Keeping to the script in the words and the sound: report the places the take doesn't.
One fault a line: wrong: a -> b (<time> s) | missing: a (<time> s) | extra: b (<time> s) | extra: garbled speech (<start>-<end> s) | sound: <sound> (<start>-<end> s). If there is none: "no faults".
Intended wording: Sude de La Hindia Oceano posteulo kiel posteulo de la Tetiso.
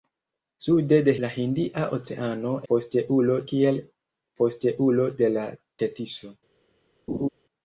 sound: laugh (7.1-7.3 s)